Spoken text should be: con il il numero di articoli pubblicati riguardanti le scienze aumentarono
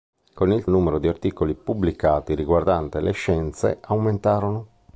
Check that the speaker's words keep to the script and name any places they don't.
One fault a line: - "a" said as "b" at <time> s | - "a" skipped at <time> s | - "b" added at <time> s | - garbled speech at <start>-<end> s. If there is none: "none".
none